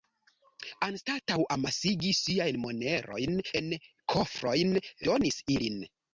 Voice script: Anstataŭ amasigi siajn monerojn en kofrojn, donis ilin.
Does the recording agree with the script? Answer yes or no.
yes